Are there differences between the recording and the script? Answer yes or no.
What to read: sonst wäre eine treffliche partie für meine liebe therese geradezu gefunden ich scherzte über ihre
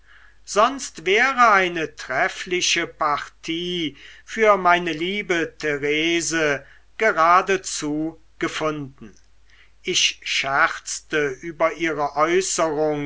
no